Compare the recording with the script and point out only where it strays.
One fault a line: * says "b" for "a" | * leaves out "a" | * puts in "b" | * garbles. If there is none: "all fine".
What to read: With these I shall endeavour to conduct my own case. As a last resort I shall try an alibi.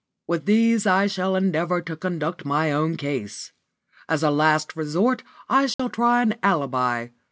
all fine